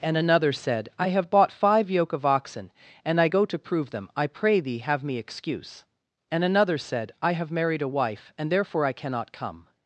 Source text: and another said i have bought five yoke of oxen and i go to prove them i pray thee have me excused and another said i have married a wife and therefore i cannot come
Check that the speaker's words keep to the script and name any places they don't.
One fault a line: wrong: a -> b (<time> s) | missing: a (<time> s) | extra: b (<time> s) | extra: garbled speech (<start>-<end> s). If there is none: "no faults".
wrong: excused -> excuse (5.2 s)